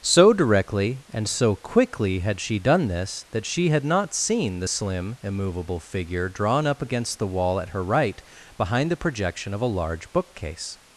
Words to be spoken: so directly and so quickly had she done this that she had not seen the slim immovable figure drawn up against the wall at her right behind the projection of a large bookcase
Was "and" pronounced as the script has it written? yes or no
yes